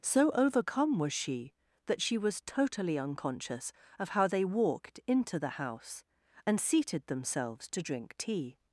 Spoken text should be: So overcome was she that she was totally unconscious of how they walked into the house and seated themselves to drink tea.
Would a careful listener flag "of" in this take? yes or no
no